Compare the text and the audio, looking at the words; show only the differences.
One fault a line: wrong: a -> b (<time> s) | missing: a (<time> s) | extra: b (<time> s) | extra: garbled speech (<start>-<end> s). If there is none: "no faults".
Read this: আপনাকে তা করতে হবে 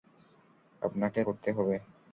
missing: তা (1.2 s)